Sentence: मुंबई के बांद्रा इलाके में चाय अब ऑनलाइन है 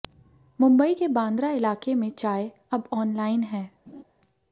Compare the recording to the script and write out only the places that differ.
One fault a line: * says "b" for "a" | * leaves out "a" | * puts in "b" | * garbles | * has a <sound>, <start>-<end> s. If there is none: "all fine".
* has a laugh, 3.9-4.0 s